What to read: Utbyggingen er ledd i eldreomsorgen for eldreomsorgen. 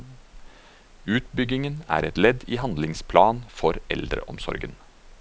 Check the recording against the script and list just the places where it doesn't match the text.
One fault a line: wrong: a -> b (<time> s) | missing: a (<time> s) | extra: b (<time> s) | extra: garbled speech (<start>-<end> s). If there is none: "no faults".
extra: et (2.1 s)
wrong: eldreomsorgen -> handlingsplan (2.6 s)